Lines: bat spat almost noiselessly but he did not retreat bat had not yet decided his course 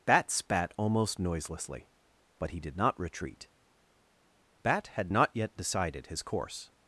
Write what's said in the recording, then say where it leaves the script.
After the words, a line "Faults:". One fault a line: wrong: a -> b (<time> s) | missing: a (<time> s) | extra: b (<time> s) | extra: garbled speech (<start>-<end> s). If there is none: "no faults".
bat spat almost noiselessly but he did not retreat bat had not yet decided his course
Faults:
no faults